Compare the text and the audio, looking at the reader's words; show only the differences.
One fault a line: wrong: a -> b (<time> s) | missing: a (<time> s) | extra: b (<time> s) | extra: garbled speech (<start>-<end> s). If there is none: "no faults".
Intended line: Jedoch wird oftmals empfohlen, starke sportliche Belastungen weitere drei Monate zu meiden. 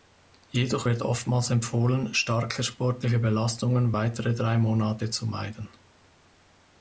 no faults